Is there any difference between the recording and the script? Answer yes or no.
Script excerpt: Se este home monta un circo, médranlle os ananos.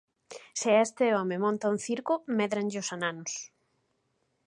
no